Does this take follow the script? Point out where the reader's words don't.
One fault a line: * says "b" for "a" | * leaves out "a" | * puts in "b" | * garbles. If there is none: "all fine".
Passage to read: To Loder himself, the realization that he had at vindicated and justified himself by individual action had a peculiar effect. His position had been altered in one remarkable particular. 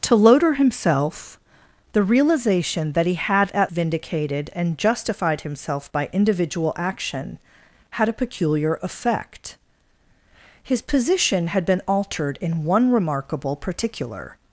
all fine